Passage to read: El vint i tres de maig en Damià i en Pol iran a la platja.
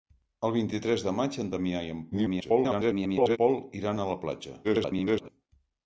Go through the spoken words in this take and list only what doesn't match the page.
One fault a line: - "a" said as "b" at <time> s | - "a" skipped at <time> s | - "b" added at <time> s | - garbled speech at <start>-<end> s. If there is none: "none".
- garbled speech at 2.1-3.4 s
- garbled speech at 4.6-5.3 s